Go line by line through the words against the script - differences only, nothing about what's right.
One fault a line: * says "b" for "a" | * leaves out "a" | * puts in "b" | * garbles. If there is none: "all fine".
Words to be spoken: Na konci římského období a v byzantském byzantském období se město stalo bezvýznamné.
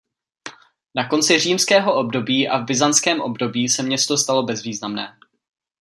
* leaves out "byzantském"